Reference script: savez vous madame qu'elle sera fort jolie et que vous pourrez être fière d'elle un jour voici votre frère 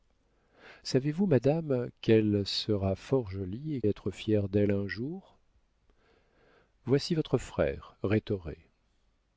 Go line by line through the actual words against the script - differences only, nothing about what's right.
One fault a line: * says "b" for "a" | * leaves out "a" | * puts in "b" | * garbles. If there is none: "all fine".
* leaves out "que vous pourrez"